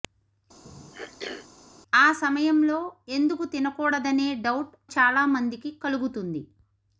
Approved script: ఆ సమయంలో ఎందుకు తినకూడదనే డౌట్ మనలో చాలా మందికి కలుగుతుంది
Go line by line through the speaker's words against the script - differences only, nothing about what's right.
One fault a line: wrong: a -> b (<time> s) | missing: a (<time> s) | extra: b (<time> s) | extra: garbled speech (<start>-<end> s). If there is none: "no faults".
missing: మనలో (4.8 s)